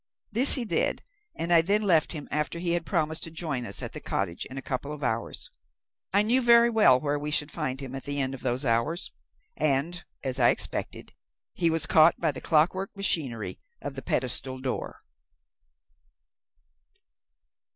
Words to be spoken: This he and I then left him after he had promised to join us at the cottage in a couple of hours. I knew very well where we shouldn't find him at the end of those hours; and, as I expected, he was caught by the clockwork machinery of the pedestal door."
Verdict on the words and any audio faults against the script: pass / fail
fail